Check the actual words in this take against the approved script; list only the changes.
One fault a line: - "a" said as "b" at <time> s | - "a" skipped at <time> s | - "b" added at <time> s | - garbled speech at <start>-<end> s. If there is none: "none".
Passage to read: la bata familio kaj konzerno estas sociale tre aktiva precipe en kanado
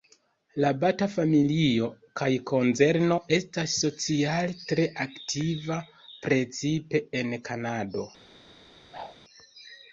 none